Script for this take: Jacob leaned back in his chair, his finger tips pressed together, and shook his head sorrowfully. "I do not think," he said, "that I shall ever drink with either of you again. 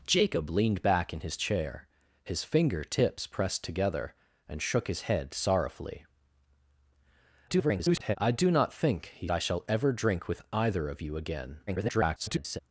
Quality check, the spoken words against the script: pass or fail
fail